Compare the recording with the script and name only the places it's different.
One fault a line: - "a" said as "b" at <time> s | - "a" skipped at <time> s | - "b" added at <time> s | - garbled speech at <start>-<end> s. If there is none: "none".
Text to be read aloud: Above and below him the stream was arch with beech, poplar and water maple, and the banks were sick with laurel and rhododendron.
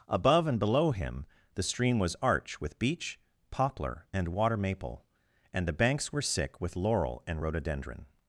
none